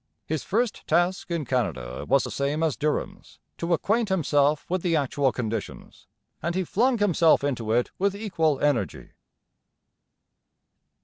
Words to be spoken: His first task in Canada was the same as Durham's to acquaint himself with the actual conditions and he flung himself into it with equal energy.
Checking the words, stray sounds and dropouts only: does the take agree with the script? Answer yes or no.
yes